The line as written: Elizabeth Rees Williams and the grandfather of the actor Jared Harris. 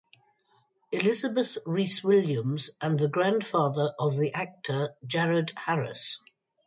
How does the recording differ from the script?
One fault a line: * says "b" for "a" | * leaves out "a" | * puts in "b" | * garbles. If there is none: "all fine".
all fine